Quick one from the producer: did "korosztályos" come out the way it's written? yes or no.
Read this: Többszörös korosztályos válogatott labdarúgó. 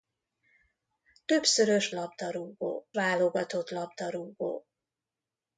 no